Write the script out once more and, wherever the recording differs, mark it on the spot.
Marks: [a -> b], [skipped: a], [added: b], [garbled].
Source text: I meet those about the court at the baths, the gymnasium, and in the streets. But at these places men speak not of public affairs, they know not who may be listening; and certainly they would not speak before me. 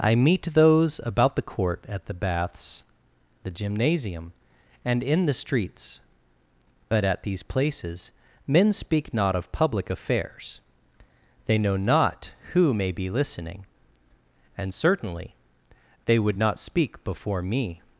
I meet those about the court at the baths, the gymnasium, and in the streets. But at these places men speak not of public affairs, they know not who may be listening; and certainly they would not speak before me.